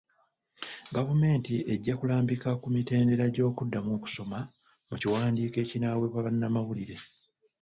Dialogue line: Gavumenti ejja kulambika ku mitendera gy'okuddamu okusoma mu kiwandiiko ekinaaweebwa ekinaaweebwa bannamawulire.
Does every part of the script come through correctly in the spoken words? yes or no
no